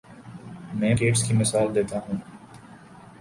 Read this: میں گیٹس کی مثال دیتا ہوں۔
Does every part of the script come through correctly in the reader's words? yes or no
yes